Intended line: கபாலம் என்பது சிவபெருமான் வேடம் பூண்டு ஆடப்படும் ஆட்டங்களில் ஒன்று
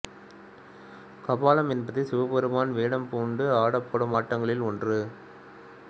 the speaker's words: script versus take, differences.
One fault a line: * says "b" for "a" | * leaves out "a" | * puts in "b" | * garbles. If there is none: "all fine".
all fine